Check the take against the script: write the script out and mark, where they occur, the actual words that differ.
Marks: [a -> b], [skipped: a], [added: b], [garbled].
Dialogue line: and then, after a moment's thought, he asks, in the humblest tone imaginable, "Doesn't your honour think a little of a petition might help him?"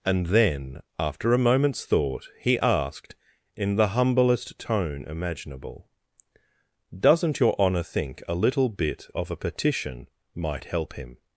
and then, after a moment's thought, he [asks, -> asked] in the humblest tone imaginable, "Doesn't your honour think a little [added: bit] of a petition might help him?"